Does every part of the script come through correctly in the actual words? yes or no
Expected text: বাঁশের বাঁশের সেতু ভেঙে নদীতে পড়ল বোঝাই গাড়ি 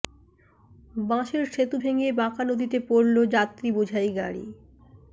no